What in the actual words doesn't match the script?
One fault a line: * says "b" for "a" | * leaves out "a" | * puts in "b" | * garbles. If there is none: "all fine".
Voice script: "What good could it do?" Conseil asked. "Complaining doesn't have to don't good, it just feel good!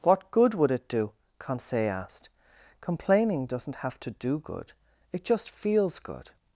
* says "would" for "could"
* says "do" for "don't"
* says "feels" for "feel"